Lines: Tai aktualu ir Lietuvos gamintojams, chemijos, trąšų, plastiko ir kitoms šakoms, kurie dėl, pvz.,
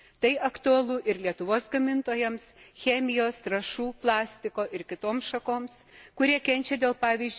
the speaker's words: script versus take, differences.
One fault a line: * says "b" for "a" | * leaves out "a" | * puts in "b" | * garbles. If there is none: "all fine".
* puts in "kenčia"